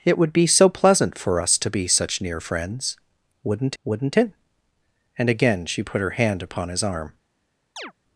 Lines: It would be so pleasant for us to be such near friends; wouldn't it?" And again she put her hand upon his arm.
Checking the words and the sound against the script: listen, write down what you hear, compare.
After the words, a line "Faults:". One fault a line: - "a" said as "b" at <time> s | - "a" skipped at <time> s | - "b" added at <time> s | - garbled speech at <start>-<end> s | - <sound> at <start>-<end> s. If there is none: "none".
It would be so pleasant for us to be such near friends; wouldn't wouldn't it?" And again she put her hand upon his arm.
Faults:
- "wouldn't" added at 3.8 s
- chirp at 7.8-7.9 s